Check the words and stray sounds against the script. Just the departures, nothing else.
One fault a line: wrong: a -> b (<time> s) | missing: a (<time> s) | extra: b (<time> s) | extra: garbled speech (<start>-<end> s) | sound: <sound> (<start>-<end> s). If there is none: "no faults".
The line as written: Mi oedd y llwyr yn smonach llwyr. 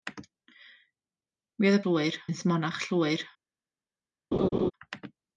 sound: laugh (4.3-4.7 s)